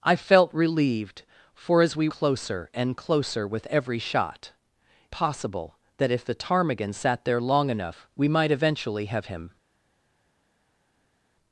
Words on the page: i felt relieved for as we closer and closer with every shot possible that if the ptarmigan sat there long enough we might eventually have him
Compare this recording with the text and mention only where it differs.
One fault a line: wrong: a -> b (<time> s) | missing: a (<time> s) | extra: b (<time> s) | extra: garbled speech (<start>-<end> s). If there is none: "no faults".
no faults